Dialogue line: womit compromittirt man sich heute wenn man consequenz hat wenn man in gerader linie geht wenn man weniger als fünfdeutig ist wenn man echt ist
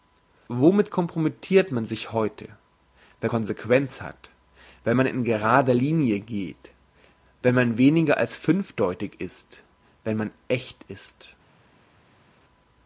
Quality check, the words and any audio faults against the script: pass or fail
fail